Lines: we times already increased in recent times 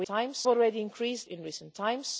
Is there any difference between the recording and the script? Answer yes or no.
no